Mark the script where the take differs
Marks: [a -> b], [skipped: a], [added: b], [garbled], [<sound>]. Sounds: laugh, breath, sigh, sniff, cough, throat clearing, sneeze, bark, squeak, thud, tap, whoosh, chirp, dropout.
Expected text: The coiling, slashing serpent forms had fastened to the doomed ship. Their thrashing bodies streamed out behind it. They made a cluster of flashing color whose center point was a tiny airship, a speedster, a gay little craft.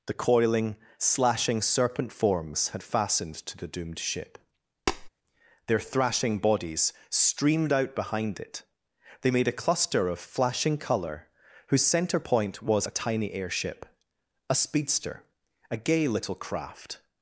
The coiling, slashing serpent forms had fastened to the doomed ship. [tap] Their thrashing bodies streamed out behind it. They made a cluster of flashing color whose center point was a tiny airship, a speedster, a gay little craft.